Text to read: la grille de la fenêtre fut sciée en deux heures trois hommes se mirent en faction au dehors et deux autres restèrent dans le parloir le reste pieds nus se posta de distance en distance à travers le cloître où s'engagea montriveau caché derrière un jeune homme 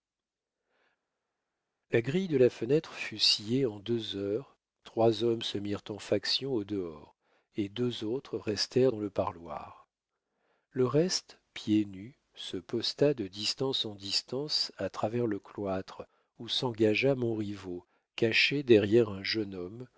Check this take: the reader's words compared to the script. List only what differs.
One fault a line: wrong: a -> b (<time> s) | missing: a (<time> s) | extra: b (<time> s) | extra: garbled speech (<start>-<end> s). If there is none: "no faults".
no faults